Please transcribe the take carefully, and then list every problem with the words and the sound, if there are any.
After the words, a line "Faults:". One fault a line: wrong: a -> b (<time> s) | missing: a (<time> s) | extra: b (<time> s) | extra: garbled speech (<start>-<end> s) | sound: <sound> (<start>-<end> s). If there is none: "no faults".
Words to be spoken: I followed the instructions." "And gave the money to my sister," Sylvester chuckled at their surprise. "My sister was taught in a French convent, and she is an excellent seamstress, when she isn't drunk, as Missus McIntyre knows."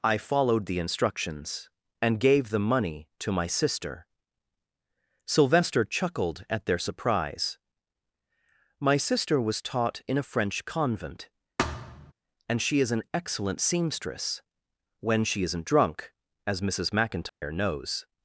I followed the instructions." "And gave the money to my sister," Sylvester chuckled at their surprise. "My sister was taught in a French convent, and she is an excellent seamstress, when she isn't drunk, as Missus McIntyre knows."
Faults:
sound: thud (11.6-12.1 s)
sound: dropout (17.3-17.4 s)